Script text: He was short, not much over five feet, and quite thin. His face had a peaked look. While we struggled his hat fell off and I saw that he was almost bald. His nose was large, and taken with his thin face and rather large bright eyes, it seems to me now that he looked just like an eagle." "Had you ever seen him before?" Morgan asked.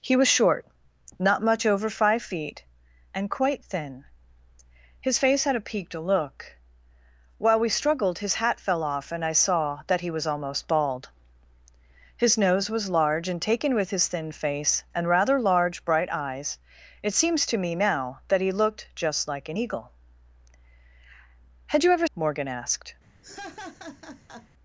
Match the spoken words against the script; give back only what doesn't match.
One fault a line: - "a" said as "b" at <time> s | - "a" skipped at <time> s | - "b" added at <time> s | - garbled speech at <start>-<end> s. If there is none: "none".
- "seen him before" skipped at 22.1 s